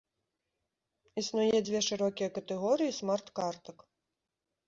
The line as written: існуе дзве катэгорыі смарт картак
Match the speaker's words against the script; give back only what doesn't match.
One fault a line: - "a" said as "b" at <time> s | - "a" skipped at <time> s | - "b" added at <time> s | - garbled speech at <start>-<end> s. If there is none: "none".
- "шырокія" added at 1.9 s